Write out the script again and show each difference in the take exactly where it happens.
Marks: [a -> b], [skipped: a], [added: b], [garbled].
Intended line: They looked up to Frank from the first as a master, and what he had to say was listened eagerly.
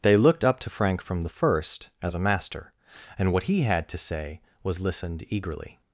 They looked up to Frank from the first as a master, and what he had to say was listened eagerly.